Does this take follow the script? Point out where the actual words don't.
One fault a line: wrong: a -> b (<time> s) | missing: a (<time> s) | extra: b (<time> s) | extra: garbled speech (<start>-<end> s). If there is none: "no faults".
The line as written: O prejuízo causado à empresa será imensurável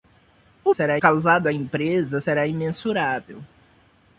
wrong: prejuízo -> será (0.7 s)